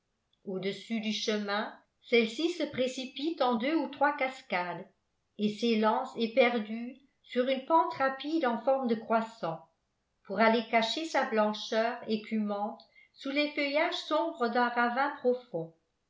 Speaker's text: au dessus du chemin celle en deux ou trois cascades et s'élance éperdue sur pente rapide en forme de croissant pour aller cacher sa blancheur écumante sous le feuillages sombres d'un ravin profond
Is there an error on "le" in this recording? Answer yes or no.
yes